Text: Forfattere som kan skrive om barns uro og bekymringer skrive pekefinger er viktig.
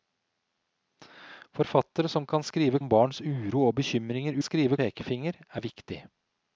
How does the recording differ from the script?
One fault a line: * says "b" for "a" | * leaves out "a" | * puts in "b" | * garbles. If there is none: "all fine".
all fine